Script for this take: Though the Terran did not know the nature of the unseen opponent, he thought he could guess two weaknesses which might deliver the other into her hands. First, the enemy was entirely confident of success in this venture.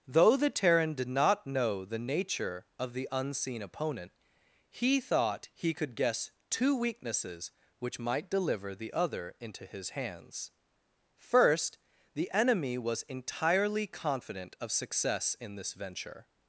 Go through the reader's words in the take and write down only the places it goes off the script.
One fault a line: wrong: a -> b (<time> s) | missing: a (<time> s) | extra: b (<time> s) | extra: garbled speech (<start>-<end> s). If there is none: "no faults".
wrong: her -> his (9.7 s)